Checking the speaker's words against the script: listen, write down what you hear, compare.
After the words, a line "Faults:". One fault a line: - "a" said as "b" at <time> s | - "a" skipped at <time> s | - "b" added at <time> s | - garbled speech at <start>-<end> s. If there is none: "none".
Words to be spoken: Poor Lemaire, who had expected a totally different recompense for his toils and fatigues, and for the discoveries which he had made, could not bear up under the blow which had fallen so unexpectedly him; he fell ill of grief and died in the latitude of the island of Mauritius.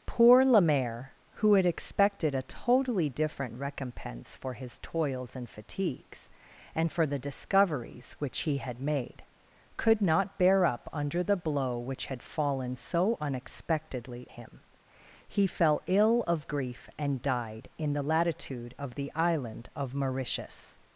Poor Lemaire, who had expected a totally different recompense for his toils and fatigues, and for the discoveries which he had made, could not bear up under the blow which had fallen so unexpectedly him; he fell ill of grief and died in the latitude of the island of Mauritius.
Faults:
none